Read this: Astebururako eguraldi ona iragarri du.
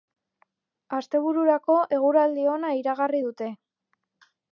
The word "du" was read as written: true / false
false